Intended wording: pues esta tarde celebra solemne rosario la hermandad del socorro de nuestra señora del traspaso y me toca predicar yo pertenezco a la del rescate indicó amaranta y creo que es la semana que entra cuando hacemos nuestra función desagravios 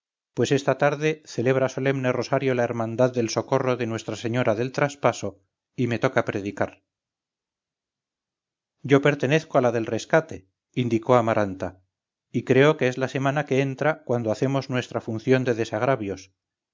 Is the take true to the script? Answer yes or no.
no